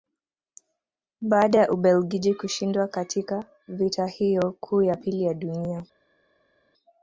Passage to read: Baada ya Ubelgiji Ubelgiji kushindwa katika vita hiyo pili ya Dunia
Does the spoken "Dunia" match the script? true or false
true